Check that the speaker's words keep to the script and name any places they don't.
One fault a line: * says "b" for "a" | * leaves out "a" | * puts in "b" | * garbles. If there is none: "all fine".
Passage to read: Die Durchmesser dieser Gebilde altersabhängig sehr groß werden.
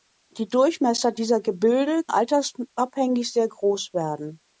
all fine